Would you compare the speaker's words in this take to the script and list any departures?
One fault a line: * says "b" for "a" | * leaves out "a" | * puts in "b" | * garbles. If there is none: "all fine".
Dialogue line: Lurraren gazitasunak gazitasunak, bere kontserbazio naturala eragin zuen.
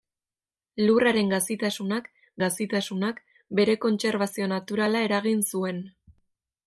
all fine